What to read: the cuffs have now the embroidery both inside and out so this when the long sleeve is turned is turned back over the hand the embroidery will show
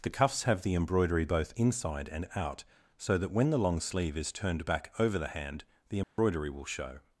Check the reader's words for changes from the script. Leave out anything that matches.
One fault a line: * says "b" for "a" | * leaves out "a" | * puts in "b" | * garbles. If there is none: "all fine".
* leaves out "now"
* says "that" for "this"
* leaves out "is turned"